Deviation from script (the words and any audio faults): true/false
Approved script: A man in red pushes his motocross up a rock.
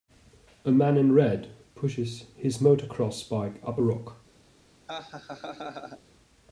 true